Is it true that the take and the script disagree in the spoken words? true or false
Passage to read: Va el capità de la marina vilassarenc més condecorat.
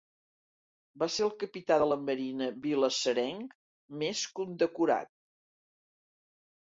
true